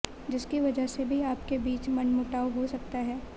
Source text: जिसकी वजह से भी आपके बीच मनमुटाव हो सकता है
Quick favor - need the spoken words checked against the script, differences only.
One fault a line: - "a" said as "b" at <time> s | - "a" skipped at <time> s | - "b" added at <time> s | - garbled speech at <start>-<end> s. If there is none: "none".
none